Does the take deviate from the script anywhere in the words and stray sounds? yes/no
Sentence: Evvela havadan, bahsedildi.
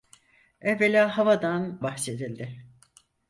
no